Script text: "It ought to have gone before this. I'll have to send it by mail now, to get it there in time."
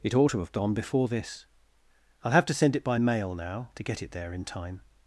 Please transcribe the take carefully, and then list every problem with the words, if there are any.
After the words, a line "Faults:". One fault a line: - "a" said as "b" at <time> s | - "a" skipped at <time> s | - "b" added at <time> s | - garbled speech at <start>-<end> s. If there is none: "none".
"It ought to have gone before this. I'll have to send it by mail now, to get it there in time."
Faults:
none